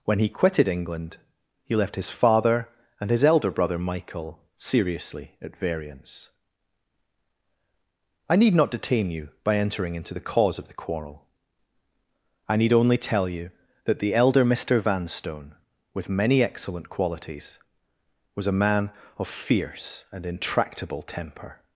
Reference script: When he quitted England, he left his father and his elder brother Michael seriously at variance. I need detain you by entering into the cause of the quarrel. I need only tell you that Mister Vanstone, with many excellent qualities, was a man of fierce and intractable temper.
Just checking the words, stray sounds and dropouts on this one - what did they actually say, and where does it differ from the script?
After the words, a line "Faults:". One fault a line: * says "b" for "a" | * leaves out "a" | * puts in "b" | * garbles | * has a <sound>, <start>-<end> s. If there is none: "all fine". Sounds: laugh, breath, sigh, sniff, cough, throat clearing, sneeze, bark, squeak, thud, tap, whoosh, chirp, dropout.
When he quitted England, he left his father and his elder brother Michael seriously at variance. I need not detain you by entering into the cause of the quarrel. I need only tell you that the elder Mister Vanstone, with many excellent qualities, was a man of fierce and intractable temper.
Faults:
* puts in "not"
* puts in "the elder"